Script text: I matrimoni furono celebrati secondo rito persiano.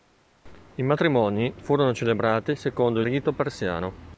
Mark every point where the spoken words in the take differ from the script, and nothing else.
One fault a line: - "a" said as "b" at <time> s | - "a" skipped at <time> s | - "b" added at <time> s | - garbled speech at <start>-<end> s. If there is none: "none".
none